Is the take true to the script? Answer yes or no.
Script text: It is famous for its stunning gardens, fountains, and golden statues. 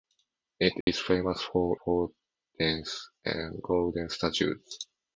no